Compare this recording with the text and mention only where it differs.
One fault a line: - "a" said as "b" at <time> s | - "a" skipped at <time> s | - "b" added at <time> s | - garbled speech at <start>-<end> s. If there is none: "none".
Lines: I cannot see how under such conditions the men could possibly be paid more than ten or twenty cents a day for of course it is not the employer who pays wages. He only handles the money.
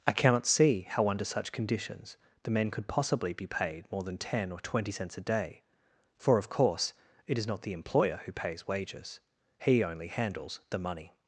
none